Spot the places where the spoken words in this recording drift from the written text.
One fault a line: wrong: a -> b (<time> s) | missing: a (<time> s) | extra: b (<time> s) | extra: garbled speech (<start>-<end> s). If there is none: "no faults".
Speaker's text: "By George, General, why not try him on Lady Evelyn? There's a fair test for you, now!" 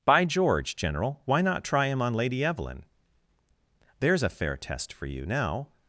no faults